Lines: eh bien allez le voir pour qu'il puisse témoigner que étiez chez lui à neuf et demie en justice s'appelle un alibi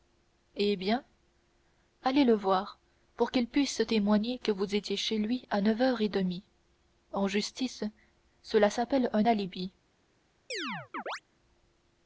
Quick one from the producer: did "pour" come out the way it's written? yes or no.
yes